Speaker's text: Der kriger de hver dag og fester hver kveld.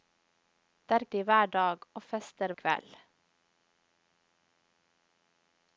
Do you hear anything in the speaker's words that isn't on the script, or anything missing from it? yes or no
yes